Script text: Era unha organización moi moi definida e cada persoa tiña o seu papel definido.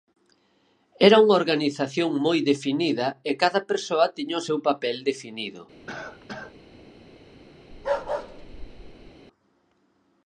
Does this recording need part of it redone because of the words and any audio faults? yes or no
yes